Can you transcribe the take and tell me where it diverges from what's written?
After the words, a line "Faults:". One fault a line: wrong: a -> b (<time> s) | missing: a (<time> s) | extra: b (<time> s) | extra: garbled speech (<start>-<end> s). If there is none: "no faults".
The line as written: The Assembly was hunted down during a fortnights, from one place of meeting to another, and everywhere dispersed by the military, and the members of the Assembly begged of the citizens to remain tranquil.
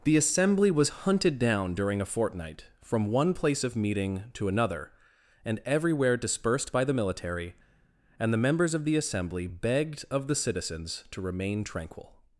The Assembly was hunted down during a fortnight, from one place of meeting to another, and everywhere dispersed by the military, and the members of the Assembly begged of the citizens to remain tranquil.
Faults:
wrong: fortnights -> fortnight (2.0 s)